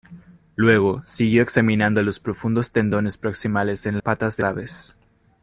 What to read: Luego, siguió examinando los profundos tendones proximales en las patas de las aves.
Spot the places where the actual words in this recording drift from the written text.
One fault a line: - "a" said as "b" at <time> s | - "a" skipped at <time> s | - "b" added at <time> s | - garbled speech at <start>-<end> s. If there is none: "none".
- "las" skipped at 4.0 s
- "las" skipped at 4.4 s